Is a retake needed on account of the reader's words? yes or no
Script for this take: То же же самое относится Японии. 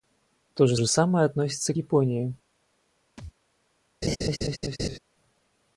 no